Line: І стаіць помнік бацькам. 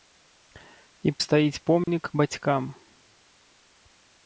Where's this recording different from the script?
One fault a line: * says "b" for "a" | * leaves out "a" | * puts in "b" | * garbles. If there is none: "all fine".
all fine